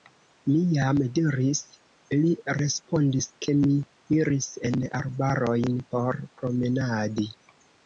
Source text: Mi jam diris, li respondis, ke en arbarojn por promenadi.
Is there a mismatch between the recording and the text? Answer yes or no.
yes